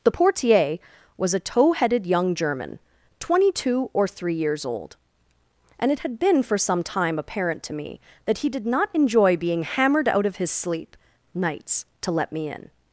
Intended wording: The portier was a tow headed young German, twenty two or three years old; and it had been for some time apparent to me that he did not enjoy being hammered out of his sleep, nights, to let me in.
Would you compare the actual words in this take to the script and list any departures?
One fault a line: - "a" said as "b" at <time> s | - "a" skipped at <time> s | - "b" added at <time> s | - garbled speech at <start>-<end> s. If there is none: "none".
none